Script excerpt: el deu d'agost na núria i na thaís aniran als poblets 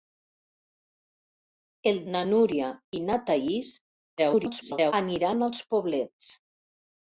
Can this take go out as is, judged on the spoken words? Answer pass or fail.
fail